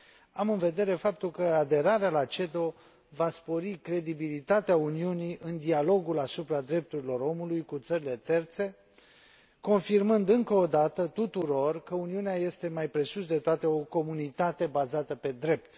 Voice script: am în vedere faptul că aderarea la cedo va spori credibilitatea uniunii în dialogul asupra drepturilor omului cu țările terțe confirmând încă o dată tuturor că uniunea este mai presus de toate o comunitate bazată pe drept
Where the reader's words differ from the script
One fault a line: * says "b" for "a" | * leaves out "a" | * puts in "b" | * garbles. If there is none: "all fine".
all fine